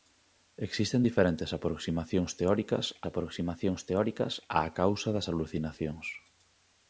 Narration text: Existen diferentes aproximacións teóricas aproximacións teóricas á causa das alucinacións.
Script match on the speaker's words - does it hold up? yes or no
yes